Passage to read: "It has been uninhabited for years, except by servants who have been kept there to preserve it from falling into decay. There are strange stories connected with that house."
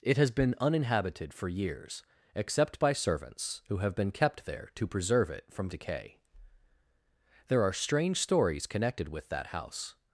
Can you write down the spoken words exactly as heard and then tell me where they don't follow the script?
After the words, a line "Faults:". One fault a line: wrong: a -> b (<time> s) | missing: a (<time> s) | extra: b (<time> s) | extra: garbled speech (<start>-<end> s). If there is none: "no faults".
"It has been uninhabited for years, except by servants who have been kept there to preserve it from decay. There are strange stories connected with that house."
Faults:
missing: falling into (5.7 s)